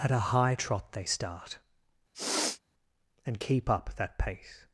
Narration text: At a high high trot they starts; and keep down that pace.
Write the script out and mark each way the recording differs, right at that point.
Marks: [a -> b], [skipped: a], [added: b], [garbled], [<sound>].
At a high [skipped: high] trot they [starts; -> start] [sniff] and keep [down -> up] that pace.